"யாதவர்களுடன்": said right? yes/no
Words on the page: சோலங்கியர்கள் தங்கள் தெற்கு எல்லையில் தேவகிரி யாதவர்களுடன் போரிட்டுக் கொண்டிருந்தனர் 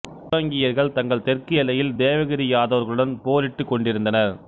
yes